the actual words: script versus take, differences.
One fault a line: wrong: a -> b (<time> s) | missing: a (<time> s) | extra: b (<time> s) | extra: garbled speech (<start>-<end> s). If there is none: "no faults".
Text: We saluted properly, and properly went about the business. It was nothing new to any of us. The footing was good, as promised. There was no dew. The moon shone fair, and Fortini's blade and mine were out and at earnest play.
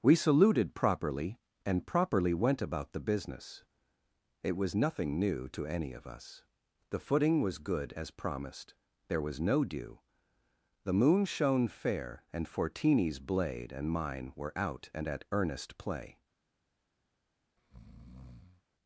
no faults